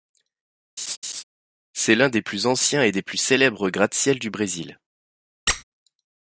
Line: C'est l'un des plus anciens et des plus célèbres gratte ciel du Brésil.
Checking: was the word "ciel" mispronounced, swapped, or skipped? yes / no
no